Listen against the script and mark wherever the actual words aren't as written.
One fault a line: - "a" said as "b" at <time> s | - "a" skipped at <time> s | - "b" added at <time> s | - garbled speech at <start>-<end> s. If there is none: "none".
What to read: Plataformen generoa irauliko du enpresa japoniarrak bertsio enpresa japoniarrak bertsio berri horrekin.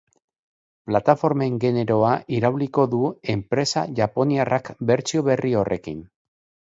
- "enpresa japoniarrak bertsio" skipped at 5.3 s